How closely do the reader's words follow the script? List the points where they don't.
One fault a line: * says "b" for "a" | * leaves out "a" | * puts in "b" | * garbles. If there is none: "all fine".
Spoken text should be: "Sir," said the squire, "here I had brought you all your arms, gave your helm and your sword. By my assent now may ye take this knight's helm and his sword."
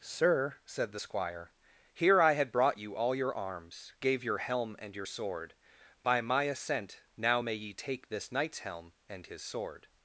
all fine